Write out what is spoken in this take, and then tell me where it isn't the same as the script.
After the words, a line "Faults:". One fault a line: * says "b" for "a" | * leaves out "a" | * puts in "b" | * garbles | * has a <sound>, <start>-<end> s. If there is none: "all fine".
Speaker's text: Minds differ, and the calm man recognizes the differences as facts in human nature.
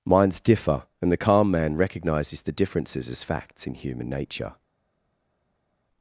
Minds differ, and the calm man recognizes the differences as facts in human nature.
Faults:
all fine